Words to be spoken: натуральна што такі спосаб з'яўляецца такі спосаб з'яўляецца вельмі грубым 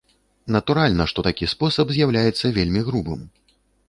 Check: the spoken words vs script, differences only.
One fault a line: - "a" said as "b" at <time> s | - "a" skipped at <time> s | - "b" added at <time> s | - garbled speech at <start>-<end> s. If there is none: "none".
- "такі спосаб з'яўляецца" skipped at 2.5 s